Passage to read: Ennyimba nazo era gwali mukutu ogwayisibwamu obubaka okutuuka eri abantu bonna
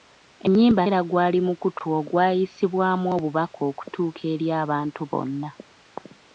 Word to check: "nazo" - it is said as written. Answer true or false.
false